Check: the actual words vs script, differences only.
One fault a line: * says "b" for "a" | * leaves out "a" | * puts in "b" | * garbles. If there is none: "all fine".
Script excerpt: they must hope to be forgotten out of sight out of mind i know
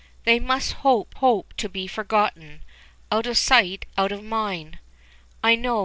* puts in "hope"